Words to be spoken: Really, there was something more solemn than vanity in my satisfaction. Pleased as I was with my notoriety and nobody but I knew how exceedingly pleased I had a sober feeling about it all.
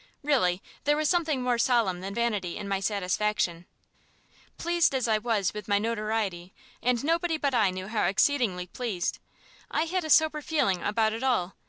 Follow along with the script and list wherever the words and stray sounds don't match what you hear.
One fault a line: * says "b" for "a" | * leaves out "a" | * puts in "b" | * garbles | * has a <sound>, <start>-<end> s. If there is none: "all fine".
all fine